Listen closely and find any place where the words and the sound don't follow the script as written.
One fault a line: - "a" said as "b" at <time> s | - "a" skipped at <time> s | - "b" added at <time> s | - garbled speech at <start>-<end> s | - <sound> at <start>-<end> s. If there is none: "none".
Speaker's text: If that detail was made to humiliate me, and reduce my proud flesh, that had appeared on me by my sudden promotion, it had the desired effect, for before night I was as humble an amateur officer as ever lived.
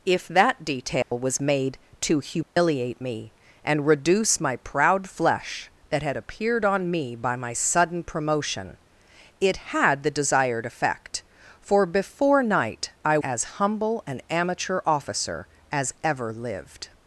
- dropout at 1.0-1.1 s
- dropout at 2.4-2.6 s
- "was" skipped at 13.2 s